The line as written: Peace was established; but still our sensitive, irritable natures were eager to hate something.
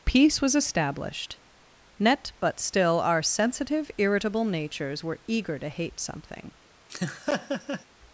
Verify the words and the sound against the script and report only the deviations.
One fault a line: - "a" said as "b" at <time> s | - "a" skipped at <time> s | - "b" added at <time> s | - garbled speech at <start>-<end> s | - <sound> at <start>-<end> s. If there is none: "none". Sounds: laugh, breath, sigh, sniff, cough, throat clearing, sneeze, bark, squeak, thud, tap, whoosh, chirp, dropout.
- "net" added at 2.0 s
- laugh at 6.9-7.8 s